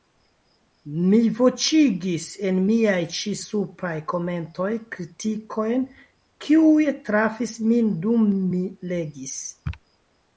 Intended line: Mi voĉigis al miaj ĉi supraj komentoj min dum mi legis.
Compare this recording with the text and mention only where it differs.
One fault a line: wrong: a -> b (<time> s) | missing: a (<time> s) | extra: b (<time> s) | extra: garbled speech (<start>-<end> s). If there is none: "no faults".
wrong: al -> en (2.5 s)
extra: kritikojn kiuj trafis (4.9 s)